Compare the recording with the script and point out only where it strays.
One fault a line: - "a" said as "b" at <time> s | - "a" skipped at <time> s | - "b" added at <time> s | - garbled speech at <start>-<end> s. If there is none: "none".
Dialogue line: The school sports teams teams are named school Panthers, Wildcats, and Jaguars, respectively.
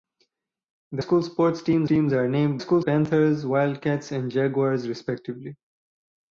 none